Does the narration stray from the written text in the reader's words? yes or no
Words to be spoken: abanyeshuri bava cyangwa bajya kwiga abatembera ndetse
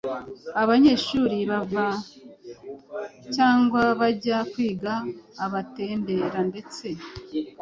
no